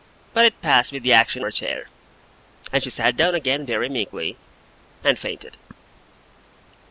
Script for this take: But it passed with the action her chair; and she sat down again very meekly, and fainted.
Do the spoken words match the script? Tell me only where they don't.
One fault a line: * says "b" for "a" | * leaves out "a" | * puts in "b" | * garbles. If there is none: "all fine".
all fine